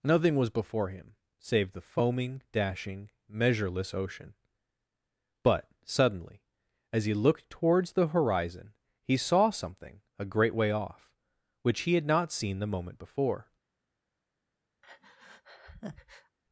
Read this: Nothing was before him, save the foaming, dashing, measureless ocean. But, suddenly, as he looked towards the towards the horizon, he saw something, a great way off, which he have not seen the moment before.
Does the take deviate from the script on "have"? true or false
true